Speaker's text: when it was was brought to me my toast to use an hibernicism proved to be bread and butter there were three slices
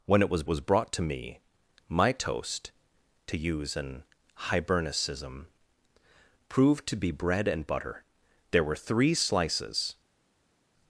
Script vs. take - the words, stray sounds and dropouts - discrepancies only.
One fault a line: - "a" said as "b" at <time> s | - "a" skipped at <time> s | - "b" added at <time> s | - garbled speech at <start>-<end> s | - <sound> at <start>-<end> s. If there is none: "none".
none